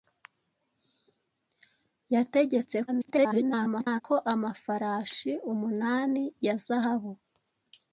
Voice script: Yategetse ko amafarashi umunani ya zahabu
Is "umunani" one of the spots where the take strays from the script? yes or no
no